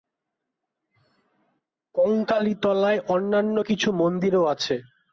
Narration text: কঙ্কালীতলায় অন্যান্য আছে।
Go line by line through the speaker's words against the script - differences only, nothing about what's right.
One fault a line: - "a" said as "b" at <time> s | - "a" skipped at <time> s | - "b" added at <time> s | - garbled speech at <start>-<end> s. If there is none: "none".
- "কিছু মন্দিরও" added at 3.6 s